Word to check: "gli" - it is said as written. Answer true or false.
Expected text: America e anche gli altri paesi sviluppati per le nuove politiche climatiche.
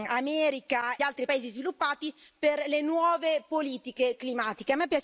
false